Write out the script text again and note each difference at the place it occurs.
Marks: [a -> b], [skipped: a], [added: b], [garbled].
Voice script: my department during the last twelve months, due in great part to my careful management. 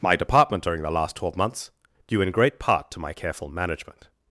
my department during the last twelve months, due in great part to my careful management.